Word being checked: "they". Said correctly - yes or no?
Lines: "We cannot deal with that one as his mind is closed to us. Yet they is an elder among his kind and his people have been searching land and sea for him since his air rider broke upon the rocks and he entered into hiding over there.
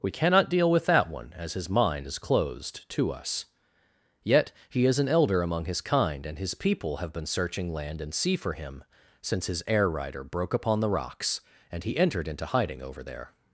no